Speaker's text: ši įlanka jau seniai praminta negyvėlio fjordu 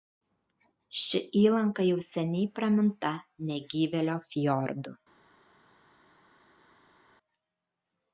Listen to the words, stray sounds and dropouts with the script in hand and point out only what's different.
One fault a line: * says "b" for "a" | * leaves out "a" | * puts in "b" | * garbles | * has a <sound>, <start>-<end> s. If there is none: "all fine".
all fine